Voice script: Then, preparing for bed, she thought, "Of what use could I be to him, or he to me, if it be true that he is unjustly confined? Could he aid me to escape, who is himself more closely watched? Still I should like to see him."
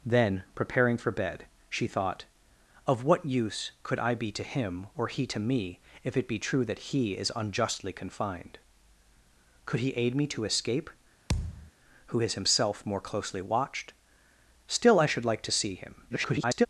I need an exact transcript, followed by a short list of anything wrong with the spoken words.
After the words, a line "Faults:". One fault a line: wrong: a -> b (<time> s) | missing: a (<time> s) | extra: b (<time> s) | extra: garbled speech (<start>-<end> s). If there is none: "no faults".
Then, preparing for bed, she thought, "Of what use could I be to him, or he to me, if it be true that he is unjustly confined? Could he aid me to escape, who is himself more closely watched? Still I should like to see him." [garbled]
Faults:
extra: garbled speech (16.1-16.7 s)